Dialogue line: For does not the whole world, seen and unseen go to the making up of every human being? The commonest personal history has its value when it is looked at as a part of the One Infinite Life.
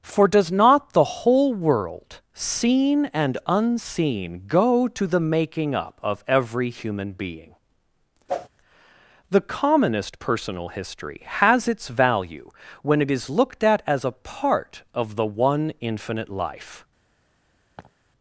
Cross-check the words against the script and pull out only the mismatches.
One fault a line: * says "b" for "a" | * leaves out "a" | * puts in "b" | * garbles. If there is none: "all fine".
all fine